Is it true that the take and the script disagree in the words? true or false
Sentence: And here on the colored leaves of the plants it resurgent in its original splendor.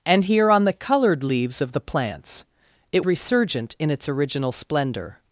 false